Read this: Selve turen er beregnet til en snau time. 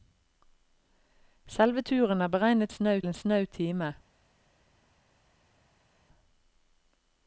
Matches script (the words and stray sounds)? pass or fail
fail